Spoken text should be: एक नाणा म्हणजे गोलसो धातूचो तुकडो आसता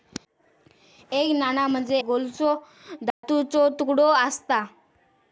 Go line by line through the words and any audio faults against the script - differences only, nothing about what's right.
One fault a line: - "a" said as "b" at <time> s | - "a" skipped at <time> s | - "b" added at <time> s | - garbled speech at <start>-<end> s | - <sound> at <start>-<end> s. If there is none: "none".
- dropout at 3.1-3.2 s